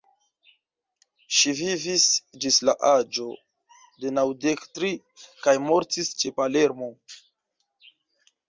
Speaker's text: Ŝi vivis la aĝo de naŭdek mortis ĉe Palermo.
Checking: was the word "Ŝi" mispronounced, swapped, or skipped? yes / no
no